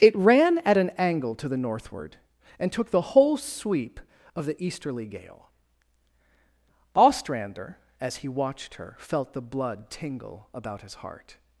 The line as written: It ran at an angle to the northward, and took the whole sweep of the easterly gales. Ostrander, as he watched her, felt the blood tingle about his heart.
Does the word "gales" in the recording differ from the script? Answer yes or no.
yes